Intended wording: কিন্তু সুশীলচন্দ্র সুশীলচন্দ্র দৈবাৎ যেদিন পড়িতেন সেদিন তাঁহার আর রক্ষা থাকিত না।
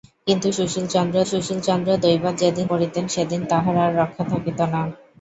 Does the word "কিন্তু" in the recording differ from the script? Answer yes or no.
no